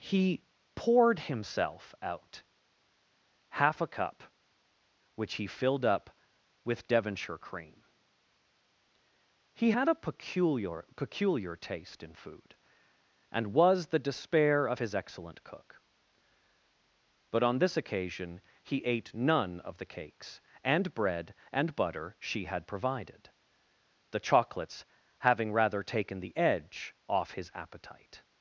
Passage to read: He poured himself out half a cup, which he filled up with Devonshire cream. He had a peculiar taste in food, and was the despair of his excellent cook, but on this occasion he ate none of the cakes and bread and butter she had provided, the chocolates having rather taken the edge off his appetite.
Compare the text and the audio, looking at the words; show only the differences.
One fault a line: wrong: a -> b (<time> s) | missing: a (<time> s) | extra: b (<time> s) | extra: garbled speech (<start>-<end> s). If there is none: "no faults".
extra: peculiar (10.9 s)